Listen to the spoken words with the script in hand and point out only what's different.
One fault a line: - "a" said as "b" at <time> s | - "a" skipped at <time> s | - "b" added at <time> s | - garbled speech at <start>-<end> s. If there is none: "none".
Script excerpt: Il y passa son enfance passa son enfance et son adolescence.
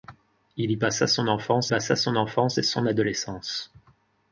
none